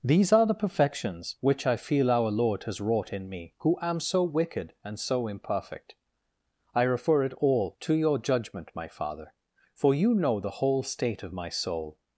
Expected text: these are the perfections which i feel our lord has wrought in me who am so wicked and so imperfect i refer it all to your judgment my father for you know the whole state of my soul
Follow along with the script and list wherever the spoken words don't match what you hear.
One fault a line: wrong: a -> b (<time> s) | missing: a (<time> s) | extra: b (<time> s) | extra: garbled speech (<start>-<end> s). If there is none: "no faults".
no faults